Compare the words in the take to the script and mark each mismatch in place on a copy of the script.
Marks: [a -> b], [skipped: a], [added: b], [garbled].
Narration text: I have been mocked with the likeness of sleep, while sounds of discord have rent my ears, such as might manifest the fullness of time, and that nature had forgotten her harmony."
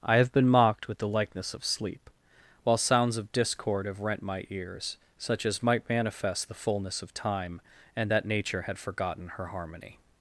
I have been mocked with the likeness of sleep, while sounds of discord have rent my ears, such as might manifest the fullness of time, and that nature had forgotten her harmony."